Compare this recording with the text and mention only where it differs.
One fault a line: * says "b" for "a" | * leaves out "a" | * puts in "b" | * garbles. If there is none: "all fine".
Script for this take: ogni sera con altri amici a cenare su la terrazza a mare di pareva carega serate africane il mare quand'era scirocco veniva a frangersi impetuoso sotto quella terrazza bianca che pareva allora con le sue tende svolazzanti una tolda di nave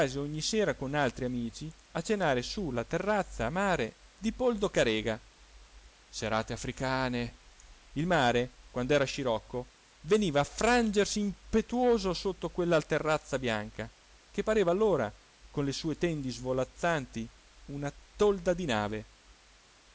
* says "poldo" for "pareva"